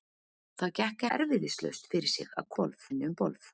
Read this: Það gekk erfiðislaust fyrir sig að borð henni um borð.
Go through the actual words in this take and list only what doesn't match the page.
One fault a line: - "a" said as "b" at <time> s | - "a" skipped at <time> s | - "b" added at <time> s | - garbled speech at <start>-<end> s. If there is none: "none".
none